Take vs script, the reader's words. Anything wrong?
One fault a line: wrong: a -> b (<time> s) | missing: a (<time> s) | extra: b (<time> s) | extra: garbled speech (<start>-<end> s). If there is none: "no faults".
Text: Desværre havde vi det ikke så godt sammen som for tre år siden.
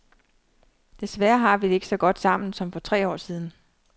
wrong: havde -> har (1.4 s)